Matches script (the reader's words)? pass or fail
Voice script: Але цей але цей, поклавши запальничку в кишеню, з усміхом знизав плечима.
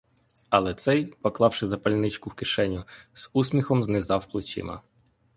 fail